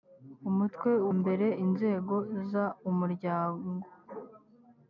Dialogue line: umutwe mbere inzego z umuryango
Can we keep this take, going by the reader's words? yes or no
yes